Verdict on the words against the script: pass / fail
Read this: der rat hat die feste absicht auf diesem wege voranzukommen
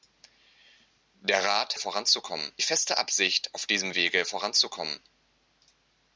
fail